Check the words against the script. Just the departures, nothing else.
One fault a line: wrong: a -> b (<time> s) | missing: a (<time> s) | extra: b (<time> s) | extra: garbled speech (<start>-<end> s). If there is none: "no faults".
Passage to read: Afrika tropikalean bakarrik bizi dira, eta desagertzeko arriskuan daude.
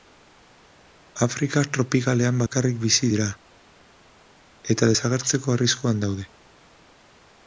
no faults